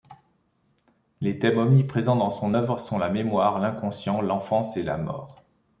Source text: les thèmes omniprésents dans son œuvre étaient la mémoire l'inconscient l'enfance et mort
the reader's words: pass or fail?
fail